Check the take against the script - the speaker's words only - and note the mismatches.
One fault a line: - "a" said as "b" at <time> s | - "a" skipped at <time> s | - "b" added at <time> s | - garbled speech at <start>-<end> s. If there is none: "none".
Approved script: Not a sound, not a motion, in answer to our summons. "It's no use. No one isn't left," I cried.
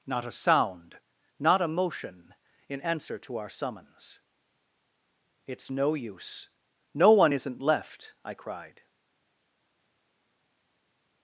none